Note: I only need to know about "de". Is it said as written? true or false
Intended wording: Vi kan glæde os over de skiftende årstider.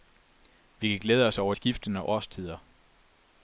false